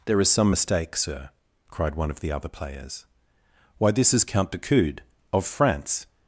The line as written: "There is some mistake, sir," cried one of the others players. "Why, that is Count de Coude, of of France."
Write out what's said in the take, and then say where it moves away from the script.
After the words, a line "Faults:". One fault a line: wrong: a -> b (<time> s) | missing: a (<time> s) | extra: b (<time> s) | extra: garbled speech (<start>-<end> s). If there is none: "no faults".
"There is some mistake, sir," cried one of the other players. "Why, this is Count de Coude, of France."
Faults:
wrong: others -> other (2.3 s)
wrong: that -> this (3.9 s)
missing: of (5.4 s)